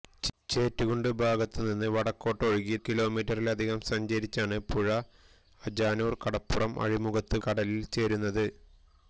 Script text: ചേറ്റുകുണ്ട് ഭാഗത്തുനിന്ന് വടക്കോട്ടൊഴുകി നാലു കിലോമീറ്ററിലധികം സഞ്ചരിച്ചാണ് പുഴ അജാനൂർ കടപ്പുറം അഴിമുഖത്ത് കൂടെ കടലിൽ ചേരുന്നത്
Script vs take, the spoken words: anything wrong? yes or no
yes